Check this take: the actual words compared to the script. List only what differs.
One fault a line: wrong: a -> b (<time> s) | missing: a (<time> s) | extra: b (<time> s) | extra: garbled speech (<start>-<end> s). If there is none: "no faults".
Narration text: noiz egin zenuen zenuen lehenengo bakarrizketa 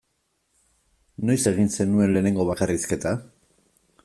missing: zenuen (2.1 s)